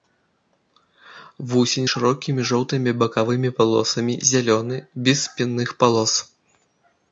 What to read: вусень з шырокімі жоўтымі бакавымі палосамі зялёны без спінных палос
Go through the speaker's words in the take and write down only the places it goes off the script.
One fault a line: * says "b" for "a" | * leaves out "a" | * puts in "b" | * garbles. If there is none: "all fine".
all fine